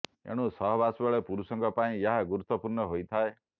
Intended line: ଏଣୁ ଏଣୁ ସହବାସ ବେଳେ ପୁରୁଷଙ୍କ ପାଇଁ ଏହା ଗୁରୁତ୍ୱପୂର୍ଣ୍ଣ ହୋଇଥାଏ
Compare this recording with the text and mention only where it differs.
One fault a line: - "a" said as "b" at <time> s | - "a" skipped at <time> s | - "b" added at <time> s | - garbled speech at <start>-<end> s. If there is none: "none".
- "ଏଣୁ" skipped at 0.5 s